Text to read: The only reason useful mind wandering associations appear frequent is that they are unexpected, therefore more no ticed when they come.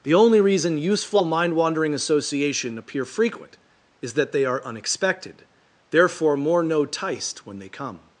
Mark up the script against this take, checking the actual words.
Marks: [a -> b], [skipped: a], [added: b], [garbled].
The only reason useful mind wandering [associations -> association] appear frequent is that they are unexpected, therefore more no ticed when they come.